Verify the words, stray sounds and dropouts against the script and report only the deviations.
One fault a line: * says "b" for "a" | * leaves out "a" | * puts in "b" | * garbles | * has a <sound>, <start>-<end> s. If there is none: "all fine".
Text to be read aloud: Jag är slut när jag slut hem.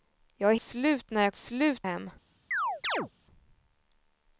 * has a chirp, 2.5-3.1 s